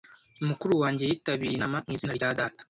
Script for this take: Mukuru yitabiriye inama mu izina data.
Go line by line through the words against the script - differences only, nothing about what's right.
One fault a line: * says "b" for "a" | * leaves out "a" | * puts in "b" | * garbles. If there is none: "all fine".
* puts in "wanjye"
* puts in "rya"